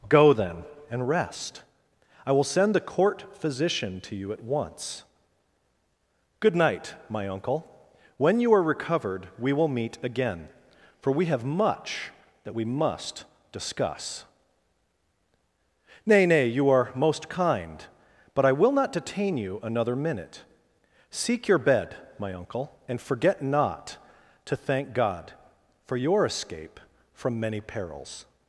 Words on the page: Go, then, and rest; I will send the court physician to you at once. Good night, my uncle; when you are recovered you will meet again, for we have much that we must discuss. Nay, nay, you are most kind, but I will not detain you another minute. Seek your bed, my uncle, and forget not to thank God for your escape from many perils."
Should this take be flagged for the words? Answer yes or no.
yes